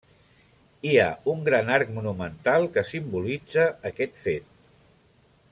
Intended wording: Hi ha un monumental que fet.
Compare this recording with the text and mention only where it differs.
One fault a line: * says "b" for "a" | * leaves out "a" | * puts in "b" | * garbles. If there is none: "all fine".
* puts in "gran arc"
* puts in "simbolitza aquest"